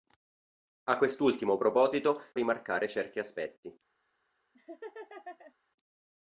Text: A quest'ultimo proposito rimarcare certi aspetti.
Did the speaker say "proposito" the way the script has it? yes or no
yes